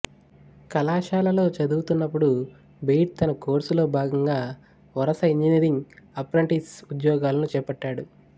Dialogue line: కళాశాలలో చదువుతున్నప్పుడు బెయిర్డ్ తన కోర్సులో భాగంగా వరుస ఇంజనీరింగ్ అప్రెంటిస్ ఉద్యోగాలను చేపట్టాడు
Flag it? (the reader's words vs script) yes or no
no